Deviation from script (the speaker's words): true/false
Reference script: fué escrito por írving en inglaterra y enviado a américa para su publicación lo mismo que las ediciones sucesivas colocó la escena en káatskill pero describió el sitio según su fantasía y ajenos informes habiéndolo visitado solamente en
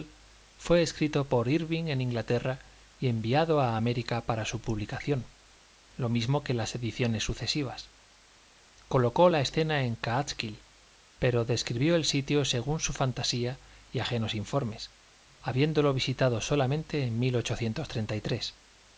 false